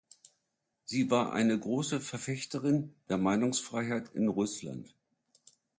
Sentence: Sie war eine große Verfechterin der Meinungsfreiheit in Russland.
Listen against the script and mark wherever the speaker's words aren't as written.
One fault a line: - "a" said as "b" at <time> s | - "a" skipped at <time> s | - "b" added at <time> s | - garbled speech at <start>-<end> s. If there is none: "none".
none